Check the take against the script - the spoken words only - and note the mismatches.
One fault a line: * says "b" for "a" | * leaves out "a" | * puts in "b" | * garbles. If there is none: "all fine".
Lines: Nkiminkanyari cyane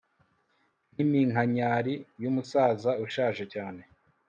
* puts in "yumusaza ushaje"